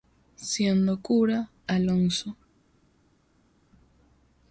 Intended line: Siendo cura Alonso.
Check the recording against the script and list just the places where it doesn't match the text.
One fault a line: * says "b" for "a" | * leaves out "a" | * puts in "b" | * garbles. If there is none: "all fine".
all fine